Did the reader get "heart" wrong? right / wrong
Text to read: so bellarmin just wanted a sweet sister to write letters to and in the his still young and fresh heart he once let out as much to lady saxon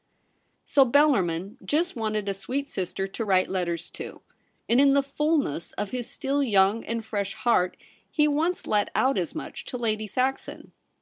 right